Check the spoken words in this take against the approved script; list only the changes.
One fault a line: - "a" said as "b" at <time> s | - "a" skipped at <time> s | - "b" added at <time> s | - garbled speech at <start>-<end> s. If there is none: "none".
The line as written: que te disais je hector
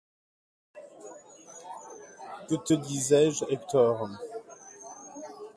none